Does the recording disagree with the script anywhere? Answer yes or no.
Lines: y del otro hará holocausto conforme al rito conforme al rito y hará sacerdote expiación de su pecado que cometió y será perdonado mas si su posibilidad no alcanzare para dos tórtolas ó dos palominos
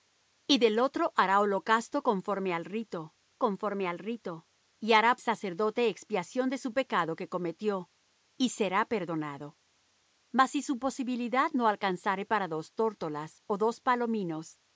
no